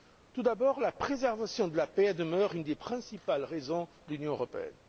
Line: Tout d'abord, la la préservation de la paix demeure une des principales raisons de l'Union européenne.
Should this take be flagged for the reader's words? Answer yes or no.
yes